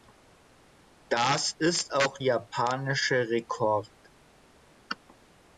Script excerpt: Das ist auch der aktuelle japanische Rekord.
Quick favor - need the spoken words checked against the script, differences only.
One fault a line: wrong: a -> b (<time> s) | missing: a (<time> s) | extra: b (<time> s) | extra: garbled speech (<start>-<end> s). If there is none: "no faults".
missing: der aktuelle (2.2 s)